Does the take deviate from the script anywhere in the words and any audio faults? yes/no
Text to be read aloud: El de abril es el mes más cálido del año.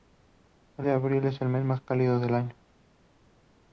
no